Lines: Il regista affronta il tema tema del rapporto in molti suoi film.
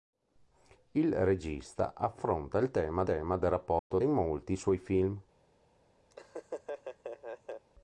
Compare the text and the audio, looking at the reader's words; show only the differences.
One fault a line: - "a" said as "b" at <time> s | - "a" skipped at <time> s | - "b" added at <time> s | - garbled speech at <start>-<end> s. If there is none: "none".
none